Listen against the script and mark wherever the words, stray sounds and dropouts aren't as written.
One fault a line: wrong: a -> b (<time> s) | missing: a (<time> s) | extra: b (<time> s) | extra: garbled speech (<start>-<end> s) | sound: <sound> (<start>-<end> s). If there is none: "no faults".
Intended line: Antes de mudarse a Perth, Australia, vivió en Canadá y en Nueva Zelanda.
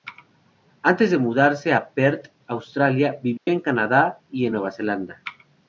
sound: dropout (3.4-3.5 s)